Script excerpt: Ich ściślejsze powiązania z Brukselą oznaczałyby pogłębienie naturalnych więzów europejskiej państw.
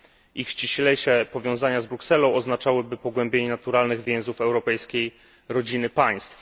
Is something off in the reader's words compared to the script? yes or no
yes